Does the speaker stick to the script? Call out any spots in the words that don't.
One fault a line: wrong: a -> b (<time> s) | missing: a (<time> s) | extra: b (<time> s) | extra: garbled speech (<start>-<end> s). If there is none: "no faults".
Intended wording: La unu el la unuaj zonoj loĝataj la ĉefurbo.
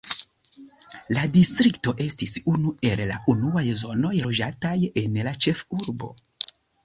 extra: distrikto estis (1.4 s)
extra: en (5.1 s)